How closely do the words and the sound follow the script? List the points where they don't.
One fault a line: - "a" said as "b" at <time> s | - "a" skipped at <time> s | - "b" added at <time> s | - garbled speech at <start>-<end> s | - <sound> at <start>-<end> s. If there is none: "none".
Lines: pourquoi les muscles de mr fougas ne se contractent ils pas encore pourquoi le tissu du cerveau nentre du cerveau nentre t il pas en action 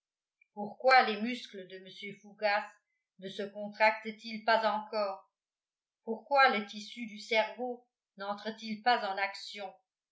- "du cerveau nentre" skipped at 8.5 s